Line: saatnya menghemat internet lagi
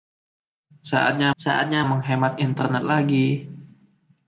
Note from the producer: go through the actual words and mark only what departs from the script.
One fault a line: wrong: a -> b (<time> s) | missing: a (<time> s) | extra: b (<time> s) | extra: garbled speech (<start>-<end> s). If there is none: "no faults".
extra: saatnya (1.4 s)